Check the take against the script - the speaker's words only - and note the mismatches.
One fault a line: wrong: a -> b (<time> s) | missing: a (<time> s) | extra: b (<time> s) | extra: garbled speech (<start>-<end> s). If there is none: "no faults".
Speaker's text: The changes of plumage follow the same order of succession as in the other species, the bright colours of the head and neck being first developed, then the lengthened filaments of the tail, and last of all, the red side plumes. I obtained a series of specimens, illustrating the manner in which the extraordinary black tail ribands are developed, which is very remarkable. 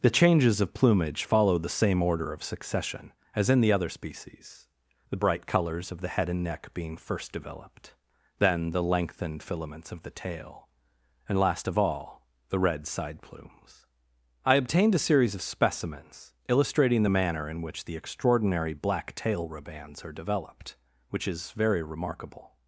no faults